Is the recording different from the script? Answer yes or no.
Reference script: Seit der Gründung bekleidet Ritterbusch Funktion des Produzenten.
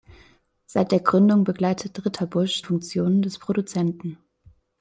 no